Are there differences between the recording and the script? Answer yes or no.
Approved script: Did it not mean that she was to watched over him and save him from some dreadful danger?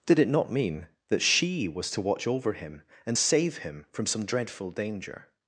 yes